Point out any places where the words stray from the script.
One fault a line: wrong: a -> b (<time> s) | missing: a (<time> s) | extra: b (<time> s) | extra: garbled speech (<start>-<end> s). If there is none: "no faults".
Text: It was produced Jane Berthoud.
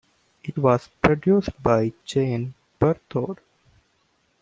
extra: by (1.6 s)